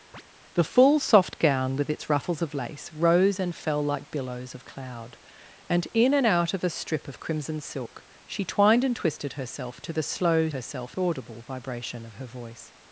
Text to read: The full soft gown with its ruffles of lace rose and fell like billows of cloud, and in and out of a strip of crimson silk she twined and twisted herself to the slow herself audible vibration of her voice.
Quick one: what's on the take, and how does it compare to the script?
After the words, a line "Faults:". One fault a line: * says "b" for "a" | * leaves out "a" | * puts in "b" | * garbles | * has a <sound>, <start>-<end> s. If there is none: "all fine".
The full soft gown with its ruffles of lace rose and fell like billows of cloud, and in and out of a strip of crimson silk she twined and twisted herself to the slow herself audible vibration of her voice.
Faults:
* has a chirp, 0.1-0.2 s